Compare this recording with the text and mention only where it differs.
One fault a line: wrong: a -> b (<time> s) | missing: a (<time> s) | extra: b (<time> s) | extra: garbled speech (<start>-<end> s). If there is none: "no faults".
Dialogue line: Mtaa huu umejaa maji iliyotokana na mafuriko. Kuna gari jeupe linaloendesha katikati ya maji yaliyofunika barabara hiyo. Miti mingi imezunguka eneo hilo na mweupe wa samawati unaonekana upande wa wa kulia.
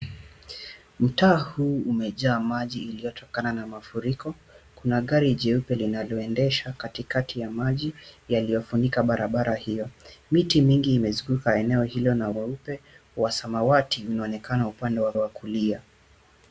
no faults